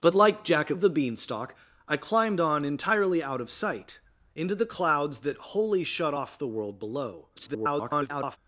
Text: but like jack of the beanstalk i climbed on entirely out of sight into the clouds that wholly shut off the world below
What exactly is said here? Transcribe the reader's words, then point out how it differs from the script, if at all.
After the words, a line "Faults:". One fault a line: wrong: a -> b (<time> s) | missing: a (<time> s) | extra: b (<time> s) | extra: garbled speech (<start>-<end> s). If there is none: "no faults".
but like jack of the beanstalk i climbed on entirely out of sight into the clouds that wholly shut off the world below [garbled]
Faults:
extra: garbled speech (7.4-8.4 s)